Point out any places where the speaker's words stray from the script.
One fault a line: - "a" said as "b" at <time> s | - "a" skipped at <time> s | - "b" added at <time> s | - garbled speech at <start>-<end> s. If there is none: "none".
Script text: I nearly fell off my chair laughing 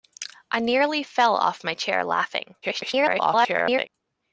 - garbled speech at 2.6-3.9 s